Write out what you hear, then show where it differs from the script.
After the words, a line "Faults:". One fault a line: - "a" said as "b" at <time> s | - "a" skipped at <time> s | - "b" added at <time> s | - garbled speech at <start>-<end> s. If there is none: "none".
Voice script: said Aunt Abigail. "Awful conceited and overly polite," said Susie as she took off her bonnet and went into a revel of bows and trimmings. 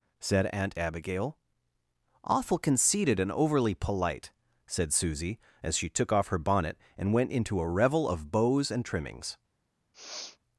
said Aunt Abigail. "Awful conceited and overly polite," said Susie as she took off her bonnet and went into a revel of bows and trimmings.
Faults:
none